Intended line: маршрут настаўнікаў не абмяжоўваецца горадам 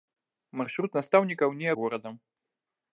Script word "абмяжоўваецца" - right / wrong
wrong